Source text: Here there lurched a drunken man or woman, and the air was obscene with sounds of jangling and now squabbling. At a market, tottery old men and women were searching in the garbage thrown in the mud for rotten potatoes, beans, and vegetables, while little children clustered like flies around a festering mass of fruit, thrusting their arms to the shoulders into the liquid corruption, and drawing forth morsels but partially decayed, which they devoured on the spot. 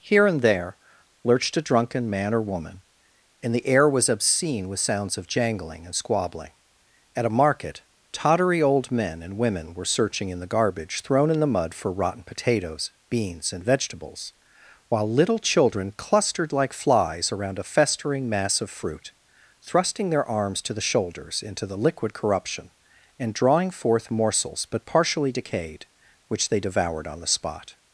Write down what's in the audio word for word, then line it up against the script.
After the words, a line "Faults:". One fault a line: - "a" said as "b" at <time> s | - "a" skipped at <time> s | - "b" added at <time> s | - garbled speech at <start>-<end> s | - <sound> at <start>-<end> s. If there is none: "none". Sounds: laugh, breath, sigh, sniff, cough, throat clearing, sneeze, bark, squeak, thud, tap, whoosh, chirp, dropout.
Here and there lurched a drunken man or woman, and the air was obscene with sounds of jangling and squabbling. At a market, tottery old men and women were searching in the garbage thrown in the mud for rotten potatoes, beans, and vegetables, while little children clustered like flies around a festering mass of fruit, thrusting their arms to the shoulders into the liquid corruption, and drawing forth morsels but partially decayed, which they devoured on the spot.
Faults:
- "and" added at 0.2 s
- "now" skipped at 5.9 s